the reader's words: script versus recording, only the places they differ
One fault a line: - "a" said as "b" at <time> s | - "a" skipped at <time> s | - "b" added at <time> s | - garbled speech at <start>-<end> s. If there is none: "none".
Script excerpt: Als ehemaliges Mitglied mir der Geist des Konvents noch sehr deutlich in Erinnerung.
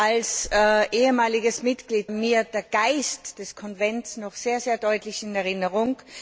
none